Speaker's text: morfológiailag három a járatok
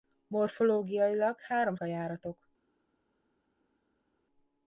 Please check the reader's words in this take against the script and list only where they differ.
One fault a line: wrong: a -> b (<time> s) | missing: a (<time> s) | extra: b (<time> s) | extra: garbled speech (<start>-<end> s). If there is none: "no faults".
no faults